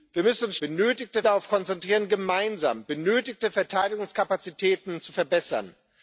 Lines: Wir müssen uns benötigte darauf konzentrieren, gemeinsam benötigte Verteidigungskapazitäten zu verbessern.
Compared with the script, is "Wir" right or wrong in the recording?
right